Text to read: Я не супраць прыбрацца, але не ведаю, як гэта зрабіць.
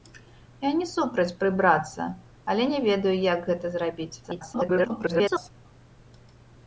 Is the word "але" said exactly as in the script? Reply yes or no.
yes